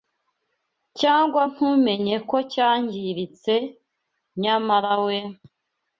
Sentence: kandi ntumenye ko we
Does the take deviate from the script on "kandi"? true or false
true